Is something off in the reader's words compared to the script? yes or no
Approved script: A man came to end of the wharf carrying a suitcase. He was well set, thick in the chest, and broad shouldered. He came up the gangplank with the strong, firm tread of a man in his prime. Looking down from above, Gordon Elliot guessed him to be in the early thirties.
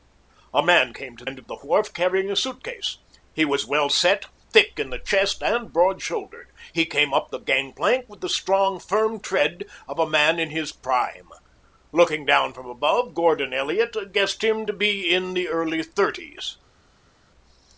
no